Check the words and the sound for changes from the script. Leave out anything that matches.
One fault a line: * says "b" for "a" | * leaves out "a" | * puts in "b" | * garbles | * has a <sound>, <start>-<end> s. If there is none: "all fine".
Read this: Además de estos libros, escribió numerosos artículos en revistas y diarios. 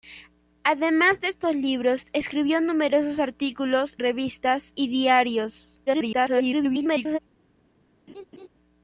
* leaves out "en"
* garbles
* has a laugh, 8.1-8.5 s